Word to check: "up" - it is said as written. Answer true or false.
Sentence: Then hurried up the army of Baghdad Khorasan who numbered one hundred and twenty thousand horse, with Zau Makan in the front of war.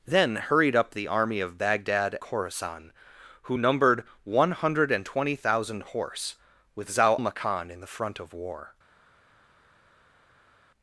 true